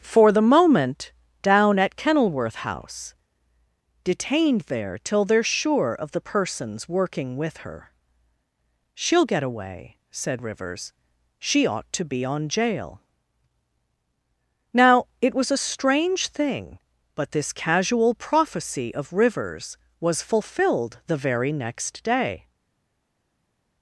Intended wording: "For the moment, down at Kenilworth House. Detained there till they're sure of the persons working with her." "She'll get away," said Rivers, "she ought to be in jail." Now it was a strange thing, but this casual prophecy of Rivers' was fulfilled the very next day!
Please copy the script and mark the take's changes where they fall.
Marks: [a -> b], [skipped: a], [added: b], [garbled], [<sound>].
"For the moment, down at Kenilworth House. Detained there till they're sure of the persons working with her." "She'll get away," said Rivers, "she ought to be [in -> on] jail." Now it was a strange thing, but this casual prophecy of Rivers' was fulfilled the very next day!